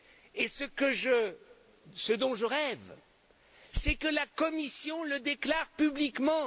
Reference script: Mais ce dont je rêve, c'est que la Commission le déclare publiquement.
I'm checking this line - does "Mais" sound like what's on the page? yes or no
no